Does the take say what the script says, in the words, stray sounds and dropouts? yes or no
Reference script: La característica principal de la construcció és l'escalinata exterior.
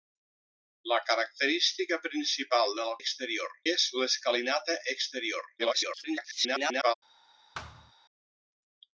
no